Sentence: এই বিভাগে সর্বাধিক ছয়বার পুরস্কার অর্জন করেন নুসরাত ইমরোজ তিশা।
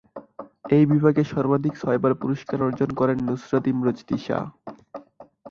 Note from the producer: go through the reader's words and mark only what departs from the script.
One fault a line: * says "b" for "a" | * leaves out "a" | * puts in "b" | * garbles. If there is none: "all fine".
all fine